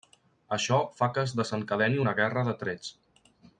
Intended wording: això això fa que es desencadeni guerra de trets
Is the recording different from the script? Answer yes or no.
yes